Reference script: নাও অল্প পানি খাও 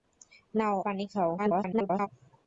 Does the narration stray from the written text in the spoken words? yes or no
yes